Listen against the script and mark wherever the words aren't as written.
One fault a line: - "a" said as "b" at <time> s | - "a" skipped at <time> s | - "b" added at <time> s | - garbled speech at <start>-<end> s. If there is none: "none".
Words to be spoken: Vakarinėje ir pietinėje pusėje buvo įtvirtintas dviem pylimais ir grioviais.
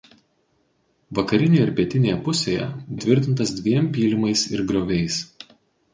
- "buvo" skipped at 2.6 s